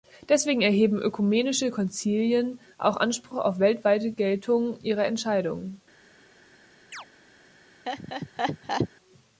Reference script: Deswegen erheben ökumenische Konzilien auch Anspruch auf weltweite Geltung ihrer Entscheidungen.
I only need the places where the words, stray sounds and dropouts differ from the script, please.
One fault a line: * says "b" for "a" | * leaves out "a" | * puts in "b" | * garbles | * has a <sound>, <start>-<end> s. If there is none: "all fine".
* has a chirp, 6.9-7.1 s
* has a laugh, 7.9-8.9 s